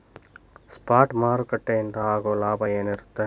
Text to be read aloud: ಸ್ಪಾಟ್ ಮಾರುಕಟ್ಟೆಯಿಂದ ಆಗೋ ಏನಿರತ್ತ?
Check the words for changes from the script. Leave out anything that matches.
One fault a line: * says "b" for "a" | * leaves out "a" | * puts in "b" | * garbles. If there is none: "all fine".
* puts in "ಲಾಭ"